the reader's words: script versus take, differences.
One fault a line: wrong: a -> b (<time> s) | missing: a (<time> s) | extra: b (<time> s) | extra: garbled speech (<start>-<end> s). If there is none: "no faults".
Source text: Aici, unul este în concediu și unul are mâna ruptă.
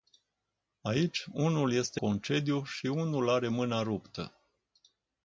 missing: în (2.0 s)